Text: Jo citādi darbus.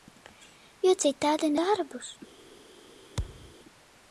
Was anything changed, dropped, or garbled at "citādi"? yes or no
no